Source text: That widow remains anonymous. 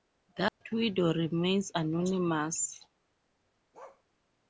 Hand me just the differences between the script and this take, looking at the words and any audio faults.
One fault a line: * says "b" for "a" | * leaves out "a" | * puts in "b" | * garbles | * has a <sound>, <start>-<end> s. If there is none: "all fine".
* has a dropout, 0.5-0.6 s
* has a bark, 3.7-4.0 s